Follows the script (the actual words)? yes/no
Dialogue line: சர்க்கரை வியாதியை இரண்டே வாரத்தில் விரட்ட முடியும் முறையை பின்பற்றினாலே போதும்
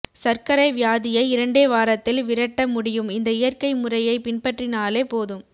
no